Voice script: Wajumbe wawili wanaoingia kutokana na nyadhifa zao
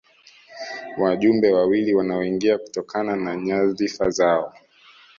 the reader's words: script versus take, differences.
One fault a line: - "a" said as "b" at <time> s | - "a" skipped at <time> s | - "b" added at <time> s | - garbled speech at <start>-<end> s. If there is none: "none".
none